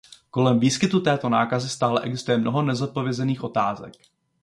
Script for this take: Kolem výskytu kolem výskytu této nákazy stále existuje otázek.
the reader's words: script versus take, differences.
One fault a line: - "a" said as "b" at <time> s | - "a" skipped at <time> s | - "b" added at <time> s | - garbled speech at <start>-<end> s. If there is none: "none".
- "kolem výskytu" skipped at 1.0 s
- "mnoho nezodpovězených" added at 2.4 s